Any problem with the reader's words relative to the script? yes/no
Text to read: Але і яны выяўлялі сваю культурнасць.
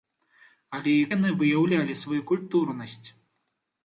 no